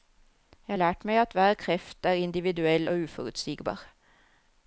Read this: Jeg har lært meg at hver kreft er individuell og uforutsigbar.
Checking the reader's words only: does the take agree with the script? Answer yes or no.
yes